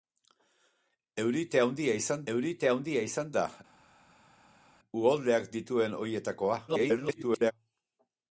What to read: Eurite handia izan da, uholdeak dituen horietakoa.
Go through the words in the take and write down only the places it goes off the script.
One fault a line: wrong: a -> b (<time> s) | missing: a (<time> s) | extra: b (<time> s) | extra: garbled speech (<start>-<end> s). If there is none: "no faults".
extra: eurite handia izan (2.3 s)
extra: garbled speech (6.7-7.5 s)